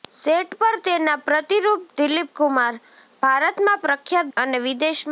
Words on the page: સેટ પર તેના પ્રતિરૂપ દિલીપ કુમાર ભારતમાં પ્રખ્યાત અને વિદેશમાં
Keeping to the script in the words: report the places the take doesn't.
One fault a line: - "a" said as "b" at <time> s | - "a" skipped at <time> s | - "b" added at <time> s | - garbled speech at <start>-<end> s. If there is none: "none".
none